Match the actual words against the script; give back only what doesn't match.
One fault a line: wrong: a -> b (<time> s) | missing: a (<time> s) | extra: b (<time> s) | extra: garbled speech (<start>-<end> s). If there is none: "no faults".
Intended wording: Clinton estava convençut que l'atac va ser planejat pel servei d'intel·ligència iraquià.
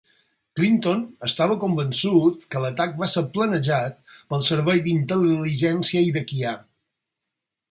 no faults